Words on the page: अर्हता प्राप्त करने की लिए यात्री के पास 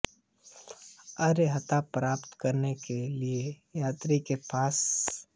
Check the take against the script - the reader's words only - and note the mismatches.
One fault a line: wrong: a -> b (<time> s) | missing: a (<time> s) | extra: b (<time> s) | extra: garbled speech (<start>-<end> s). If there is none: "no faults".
wrong: की -> के (2.9 s)